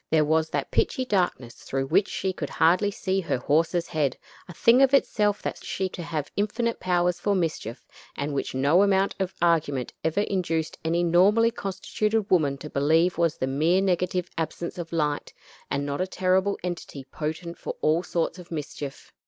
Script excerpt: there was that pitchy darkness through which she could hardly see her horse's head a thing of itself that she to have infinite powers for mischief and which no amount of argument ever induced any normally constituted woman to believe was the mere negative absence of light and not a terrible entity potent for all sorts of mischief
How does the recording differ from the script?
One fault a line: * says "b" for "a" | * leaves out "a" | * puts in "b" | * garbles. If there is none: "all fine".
all fine